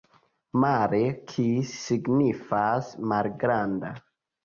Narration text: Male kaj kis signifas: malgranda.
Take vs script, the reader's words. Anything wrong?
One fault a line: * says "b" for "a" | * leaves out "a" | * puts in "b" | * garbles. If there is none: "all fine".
* leaves out "kaj"